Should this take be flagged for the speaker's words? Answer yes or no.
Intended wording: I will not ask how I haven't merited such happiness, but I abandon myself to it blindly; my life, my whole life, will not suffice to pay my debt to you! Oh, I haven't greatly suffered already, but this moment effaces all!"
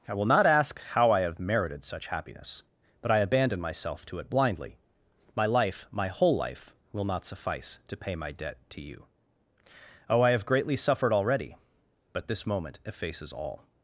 yes